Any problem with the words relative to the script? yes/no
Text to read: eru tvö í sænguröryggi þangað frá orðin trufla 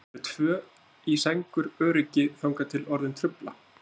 yes